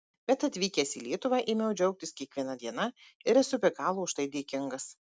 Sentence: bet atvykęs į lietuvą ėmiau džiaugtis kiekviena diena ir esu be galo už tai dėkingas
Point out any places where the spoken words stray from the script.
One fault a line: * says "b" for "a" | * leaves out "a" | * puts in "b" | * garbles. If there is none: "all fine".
all fine